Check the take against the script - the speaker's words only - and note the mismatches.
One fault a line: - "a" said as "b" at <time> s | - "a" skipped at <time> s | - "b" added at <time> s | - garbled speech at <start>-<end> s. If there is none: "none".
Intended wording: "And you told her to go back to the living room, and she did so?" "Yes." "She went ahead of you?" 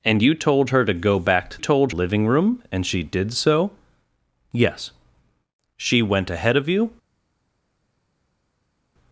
- "the" said as "told" at 1.6 s